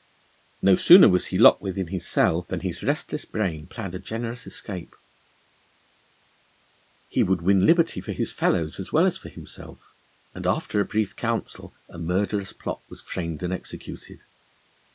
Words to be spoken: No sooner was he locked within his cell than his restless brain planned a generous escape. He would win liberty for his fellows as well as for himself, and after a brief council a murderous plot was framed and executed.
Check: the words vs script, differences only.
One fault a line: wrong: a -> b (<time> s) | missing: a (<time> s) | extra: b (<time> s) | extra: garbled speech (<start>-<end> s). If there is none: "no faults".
no faults